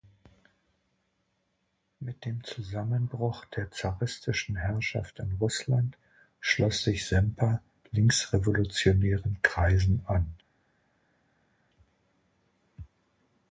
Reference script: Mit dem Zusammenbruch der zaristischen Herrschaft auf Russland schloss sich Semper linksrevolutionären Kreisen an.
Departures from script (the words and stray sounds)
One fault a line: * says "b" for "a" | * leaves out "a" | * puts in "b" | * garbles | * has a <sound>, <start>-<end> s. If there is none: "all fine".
* says "in" for "auf"